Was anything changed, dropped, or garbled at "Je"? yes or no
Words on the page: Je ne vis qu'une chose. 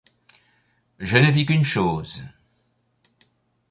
no